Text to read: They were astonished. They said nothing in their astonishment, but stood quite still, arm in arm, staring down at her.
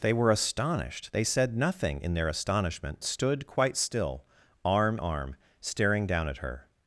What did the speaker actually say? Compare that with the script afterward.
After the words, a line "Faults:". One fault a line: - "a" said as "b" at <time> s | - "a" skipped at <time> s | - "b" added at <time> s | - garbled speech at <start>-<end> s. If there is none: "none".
They were astonished. They said nothing in their astonishment, stood quite still, arm arm, staring down at her.
Faults:
- "but" skipped at 3.0 s
- "in" skipped at 5.0 s